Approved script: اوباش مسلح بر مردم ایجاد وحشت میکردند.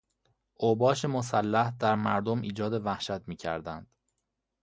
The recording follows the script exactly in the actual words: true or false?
false